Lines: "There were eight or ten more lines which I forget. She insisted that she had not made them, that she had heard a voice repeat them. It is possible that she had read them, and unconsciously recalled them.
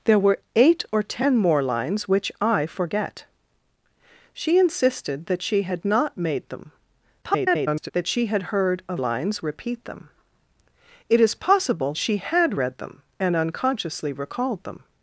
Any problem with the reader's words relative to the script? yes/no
yes